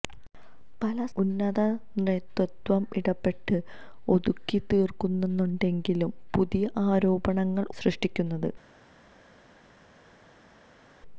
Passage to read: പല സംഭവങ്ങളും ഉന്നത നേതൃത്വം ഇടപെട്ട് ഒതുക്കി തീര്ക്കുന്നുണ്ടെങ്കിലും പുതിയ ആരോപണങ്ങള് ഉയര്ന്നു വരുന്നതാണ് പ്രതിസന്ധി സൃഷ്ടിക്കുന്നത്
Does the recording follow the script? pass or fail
fail